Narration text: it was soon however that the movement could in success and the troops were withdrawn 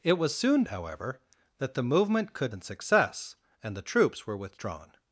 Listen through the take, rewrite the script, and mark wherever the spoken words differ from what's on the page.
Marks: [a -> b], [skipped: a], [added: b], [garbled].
it was soon however that the movement could in success and the troops were withdrawn